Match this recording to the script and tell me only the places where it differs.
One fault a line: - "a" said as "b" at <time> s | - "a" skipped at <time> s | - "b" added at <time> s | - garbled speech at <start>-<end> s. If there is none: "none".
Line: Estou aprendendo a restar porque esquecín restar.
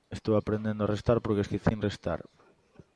none